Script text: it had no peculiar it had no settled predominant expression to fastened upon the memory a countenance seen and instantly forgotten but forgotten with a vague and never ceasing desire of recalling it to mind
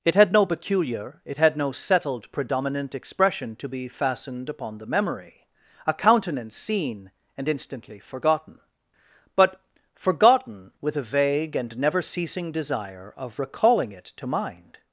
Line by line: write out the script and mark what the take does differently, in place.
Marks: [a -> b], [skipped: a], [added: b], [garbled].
it had no peculiar it had no settled predominant expression to [added: be] fastened upon the memory a countenance seen and instantly forgotten but forgotten with a vague and never ceasing desire of recalling it to mind